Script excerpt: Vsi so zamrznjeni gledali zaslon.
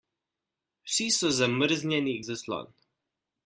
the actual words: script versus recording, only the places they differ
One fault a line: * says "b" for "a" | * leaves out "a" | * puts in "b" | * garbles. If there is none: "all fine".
* leaves out "gledali"